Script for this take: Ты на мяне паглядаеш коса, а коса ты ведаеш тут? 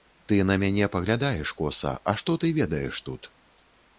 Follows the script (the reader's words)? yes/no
no